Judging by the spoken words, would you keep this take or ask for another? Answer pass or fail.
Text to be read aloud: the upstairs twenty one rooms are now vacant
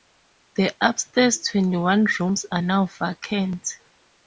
pass